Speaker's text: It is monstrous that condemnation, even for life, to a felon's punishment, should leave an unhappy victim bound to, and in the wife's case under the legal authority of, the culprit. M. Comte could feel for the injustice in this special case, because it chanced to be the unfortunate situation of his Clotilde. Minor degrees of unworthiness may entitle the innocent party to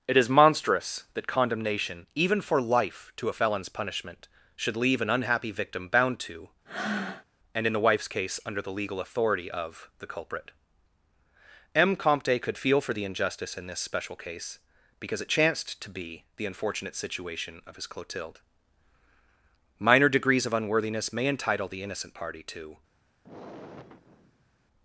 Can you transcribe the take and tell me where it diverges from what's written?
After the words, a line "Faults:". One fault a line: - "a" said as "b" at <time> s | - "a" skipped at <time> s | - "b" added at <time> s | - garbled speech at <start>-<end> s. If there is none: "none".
It is monstrous that condemnation, even for life, to a felon's punishment, should leave an unhappy victim bound to, and in the wife's case under the legal authority of, the culprit. M. Comte could feel for the injustice in this special case, because it chanced to be the unfortunate situation of his Clotilde. Minor degrees of unworthiness may entitle the innocent party to
Faults:
none